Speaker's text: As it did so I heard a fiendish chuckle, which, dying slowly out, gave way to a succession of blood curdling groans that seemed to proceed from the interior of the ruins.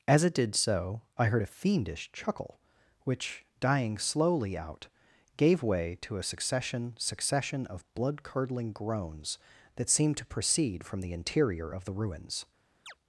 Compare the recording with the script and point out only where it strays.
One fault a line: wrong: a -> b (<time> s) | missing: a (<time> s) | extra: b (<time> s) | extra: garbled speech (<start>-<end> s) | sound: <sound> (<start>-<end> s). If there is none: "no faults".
extra: succession (7.0 s)
sound: chirp (12.9-12.9 s)